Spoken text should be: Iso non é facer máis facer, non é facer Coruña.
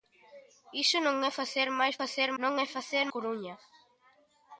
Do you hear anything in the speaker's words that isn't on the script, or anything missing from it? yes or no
no